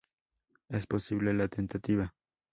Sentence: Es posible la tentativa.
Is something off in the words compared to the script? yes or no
no